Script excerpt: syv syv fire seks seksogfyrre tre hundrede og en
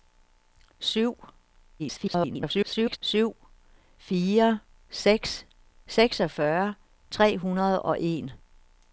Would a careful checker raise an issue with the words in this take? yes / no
yes